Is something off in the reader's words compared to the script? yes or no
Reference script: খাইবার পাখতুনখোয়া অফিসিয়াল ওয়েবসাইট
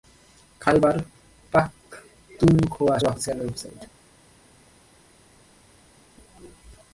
no